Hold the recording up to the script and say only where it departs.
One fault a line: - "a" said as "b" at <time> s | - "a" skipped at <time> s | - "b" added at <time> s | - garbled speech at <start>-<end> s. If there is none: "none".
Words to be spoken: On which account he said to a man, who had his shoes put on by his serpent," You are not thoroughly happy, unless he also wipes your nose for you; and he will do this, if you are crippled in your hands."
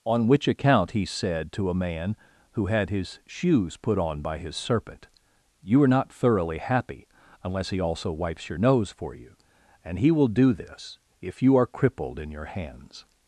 none